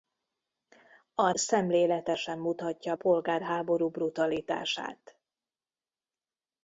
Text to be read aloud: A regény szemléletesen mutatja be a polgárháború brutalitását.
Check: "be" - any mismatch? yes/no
yes